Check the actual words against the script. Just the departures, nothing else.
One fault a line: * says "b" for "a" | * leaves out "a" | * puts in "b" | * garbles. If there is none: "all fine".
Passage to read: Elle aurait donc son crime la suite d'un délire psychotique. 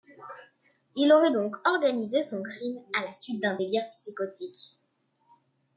* says "Il" for "Elle"
* puts in "organisé"
* puts in "à"